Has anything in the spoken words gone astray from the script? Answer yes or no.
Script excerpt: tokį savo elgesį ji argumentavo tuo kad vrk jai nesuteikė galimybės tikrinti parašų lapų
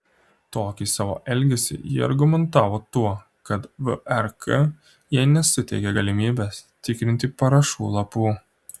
no